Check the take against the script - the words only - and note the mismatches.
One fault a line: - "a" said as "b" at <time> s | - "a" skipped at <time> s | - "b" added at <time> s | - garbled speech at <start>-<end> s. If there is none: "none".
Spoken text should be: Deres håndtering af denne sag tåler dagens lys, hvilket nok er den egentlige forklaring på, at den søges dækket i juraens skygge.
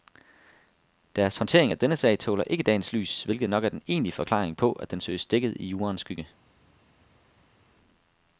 - "ikke" added at 2.4 s